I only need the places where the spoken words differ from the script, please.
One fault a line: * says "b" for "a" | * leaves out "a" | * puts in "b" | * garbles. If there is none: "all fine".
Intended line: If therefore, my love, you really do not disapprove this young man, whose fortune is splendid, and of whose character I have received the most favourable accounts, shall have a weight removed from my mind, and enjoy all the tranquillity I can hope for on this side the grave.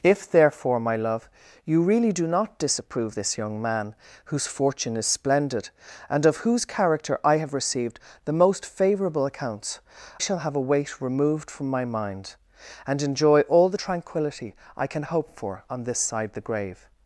all fine